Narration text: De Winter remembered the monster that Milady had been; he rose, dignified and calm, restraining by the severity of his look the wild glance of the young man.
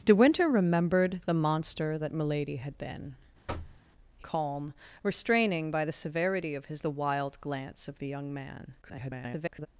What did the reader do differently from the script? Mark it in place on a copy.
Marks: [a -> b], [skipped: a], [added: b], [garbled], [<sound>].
De Winter remembered the monster that Milady had been; [thud] he [skipped: rose, dignified and] calm, restraining by the severity of his [skipped: look] the wild glance of the young man. [garbled]